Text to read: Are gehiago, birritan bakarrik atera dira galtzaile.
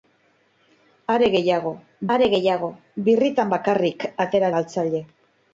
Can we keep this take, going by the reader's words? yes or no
no